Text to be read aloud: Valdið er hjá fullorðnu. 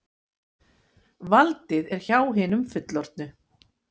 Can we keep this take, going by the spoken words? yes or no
no